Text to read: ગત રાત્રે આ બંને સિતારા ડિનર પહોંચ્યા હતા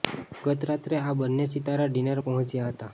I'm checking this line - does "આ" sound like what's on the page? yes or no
yes